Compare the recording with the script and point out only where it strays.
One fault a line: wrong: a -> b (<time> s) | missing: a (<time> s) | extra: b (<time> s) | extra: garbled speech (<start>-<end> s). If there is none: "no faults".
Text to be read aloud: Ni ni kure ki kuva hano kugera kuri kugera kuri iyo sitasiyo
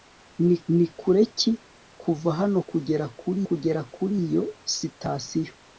no faults